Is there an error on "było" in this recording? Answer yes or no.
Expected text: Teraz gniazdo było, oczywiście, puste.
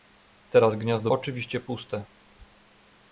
yes